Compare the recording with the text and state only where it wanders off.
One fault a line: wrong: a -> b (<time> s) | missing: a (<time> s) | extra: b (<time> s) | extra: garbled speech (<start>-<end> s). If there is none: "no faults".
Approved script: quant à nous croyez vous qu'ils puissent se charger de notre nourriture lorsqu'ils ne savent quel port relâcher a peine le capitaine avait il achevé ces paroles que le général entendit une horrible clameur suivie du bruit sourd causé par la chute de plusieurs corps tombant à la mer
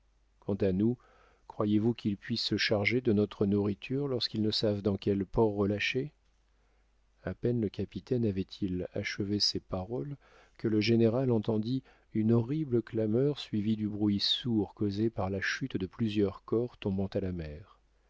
extra: dans (4.8 s)